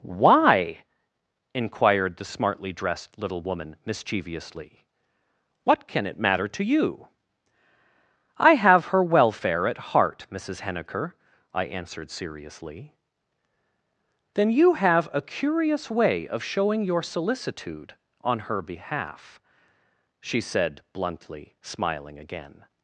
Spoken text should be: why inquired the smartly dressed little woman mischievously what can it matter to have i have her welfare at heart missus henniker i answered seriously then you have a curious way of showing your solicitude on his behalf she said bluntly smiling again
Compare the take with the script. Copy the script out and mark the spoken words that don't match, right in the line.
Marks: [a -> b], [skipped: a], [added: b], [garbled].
why inquired the smartly dressed little woman mischievously what can it matter to [have -> you] i have her welfare at heart missus henniker i answered seriously then you have a curious way of showing your solicitude on [his -> her] behalf she said bluntly smiling again